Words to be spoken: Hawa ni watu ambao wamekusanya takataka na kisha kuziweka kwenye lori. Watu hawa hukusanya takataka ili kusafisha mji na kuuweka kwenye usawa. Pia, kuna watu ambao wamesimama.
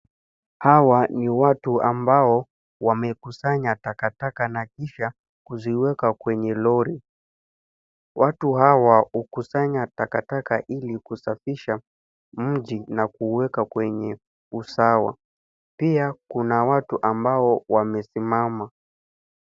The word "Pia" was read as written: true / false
true